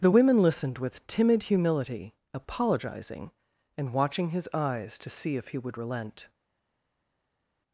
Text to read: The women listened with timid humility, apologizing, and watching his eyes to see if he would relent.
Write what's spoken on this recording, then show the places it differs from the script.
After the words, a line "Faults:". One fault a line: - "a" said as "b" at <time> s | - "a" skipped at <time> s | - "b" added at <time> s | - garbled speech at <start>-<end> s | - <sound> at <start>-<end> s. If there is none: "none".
The women listened with timid humility, apologizing, and watching his eyes to see if he would relent.
Faults:
none